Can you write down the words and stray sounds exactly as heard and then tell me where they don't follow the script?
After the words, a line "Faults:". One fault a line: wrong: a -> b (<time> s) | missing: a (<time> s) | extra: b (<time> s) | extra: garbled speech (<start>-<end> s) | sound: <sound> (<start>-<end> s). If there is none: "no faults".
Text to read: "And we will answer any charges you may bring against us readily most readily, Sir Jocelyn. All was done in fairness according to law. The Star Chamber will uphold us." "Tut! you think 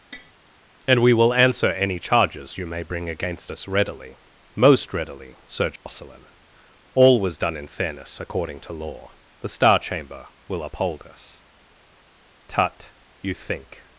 "And we will answer any charges you may bring against us readily most readily, Sir Jocelyn. All was done in fairness according to law. The Star Chamber will uphold us." "Tut! you think
Faults:
sound: tap (0.1-0.3 s)
sound: dropout (5.8-5.9 s)